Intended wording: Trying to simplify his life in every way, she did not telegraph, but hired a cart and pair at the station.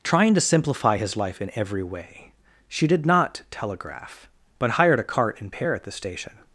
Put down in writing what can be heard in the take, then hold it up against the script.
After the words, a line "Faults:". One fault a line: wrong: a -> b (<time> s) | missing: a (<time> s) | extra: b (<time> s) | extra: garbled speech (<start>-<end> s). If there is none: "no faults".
Trying to simplify his life in every way, she did not telegraph, but hired a cart and pair at the station.
Faults:
no faults